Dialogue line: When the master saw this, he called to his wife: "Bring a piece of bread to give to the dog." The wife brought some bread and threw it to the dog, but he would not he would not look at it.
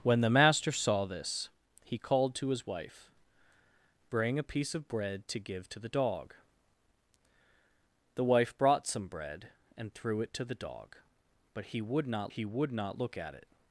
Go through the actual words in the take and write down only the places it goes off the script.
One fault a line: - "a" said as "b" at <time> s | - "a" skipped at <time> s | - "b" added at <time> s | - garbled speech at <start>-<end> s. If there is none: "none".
none